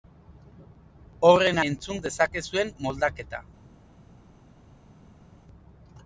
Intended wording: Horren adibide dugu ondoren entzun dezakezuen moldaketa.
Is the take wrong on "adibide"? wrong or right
wrong